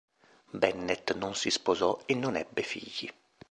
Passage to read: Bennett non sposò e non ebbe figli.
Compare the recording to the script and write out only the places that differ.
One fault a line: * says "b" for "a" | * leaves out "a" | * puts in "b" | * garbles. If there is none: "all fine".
* puts in "si"